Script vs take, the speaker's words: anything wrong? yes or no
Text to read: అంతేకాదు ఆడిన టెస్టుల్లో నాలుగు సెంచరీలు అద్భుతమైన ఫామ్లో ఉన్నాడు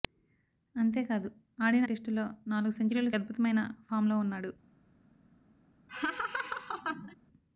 no